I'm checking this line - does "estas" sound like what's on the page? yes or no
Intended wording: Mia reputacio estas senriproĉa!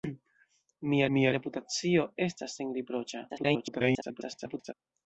yes